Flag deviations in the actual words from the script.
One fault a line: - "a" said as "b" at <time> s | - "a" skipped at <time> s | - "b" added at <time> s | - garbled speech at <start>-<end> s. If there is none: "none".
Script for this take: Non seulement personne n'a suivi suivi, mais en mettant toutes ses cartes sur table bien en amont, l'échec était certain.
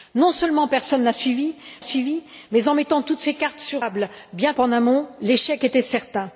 none